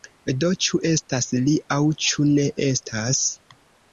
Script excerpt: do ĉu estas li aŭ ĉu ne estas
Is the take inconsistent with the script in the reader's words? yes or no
no